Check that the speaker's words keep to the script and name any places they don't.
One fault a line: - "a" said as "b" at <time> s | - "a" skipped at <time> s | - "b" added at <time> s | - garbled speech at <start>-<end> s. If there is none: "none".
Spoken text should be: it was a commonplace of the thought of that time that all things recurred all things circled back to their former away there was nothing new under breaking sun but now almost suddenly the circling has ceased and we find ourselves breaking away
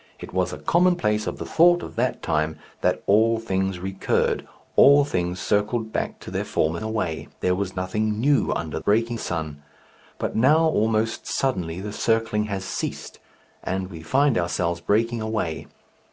none